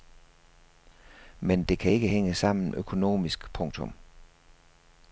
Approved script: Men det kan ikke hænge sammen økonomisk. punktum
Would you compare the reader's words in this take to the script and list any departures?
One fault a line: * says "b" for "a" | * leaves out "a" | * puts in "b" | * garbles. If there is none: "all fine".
all fine